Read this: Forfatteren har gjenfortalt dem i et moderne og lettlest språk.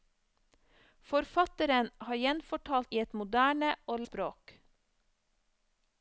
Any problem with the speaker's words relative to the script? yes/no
yes